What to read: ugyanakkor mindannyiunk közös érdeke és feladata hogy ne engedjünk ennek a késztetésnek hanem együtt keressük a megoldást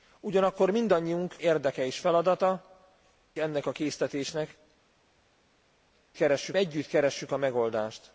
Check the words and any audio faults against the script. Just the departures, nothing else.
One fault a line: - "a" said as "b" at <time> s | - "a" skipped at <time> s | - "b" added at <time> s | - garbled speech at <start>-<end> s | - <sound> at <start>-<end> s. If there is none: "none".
- "közös" skipped at 1.4 s
- "hogy ne engedjünk" skipped at 2.8 s
- "hanem" said as "keressük" at 6.1 s